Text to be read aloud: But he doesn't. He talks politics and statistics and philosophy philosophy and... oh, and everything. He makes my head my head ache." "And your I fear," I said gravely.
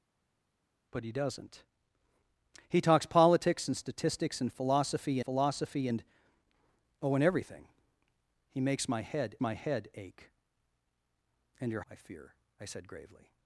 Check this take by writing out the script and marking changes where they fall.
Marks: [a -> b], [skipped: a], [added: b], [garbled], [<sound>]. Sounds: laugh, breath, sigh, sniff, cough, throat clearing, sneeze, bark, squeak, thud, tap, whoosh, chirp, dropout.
But he doesn't. He talks politics and statistics and philosophy philosophy and... oh, and everything. He makes my head my head ache." "And your I fear," I said gravely.